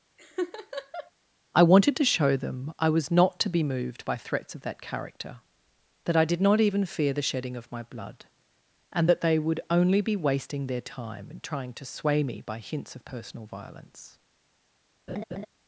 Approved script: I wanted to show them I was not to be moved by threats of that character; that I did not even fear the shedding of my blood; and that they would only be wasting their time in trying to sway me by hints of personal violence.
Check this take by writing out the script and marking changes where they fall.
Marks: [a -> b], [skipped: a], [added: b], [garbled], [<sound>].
[laugh] I wanted to show them I was not to be moved by threats of that character; that I did not even fear the shedding of my blood; and that they would only be wasting their time in trying to sway me by hints of personal violence. [laugh]